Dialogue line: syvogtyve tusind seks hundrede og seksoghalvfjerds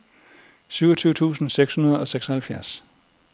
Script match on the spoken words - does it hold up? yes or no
yes